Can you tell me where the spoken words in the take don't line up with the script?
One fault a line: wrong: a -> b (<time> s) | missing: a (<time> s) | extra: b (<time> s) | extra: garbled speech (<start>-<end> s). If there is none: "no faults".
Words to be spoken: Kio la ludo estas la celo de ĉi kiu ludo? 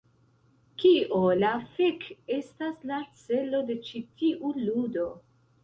wrong: ludo -> fek (1.8 s)
wrong: kiu -> tiu (4.2 s)